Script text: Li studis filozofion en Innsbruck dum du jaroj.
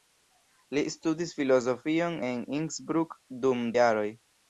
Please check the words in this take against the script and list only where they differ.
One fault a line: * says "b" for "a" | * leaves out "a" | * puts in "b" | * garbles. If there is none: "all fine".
* leaves out "du"